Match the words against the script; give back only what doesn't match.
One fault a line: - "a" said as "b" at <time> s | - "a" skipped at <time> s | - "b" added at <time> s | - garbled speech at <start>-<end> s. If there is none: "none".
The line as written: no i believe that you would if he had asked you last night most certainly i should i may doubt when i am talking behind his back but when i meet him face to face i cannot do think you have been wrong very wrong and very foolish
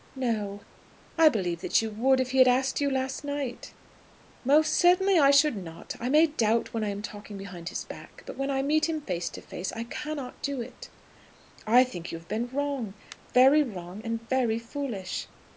- "not" added at 5.5 s
- "it i" added at 10.6 s